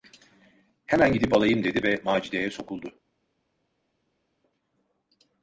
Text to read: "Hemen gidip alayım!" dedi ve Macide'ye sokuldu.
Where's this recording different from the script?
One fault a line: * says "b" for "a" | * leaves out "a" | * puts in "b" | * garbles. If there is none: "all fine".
all fine